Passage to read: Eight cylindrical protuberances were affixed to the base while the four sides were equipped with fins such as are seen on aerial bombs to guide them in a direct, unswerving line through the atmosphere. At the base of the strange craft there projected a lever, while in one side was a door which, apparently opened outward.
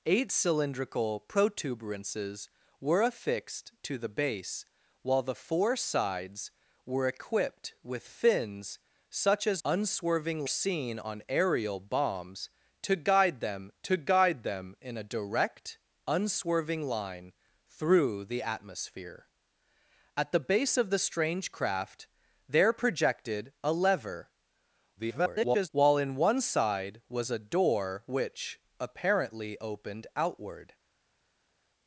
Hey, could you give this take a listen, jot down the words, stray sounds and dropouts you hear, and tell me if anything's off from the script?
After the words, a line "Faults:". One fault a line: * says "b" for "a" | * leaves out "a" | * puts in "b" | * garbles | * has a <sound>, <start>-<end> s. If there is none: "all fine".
Eight cylindrical protuberances were affixed to the base while the four sides were equipped with fins such as unswerving seen on aerial bombs to guide them to guide them in a direct, unswerving line through the atmosphere. At the base of the strange craft there projected a lever, [garbled] while in one side was a door which, apparently opened outward.
Faults:
* says "unswerving" for "are"
* puts in "to guide them"
* garbles